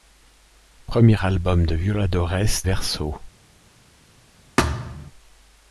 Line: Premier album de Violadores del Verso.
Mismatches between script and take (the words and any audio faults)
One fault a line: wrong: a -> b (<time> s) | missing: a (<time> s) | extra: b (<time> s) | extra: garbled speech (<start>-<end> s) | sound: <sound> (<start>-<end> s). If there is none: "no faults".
missing: del (2.6 s)
sound: thud (4.6-5.1 s)